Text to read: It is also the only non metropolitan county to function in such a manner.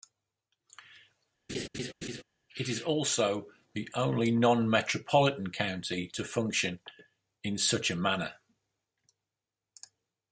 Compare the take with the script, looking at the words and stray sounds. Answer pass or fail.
fail